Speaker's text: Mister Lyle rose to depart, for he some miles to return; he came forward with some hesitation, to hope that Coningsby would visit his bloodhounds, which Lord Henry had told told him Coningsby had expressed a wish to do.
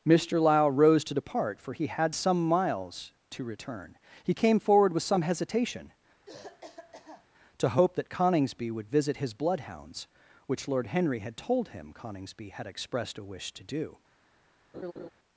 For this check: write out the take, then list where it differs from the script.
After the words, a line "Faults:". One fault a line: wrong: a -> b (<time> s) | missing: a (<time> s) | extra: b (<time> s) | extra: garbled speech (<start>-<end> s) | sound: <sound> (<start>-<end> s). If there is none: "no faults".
Mister Lyle rose to depart, for he had some miles to return; he came forward with some hesitation, to hope that Coningsby would visit his bloodhounds, which Lord Henry had told him Coningsby had expressed a wish to do.
Faults:
extra: had (1.9 s)
sound: cough (6.3-7.3 s)
missing: told (11.7 s)
sound: laugh (14.7-15.1 s)